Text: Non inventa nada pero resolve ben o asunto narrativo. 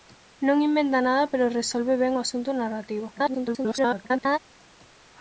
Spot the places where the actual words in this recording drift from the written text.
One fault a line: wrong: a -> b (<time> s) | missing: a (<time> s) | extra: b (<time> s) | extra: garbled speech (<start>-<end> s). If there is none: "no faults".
extra: garbled speech (3.1-4.4 s)